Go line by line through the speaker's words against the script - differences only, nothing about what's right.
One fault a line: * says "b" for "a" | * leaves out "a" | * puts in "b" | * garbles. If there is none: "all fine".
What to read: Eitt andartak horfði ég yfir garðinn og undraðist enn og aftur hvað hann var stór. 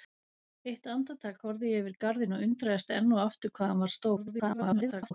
* garbles